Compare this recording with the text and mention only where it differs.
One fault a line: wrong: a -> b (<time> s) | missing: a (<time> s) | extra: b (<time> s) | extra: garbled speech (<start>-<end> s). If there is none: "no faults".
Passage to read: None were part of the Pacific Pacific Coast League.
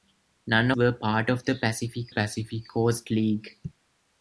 no faults